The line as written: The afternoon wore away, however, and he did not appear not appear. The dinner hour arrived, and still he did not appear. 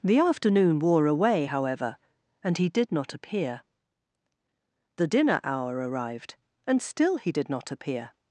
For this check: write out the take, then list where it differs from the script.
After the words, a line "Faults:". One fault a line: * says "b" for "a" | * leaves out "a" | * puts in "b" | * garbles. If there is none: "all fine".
The afternoon wore away, however, and he did not appear. The dinner hour arrived, and still he did not appear.
Faults:
* leaves out "not appear"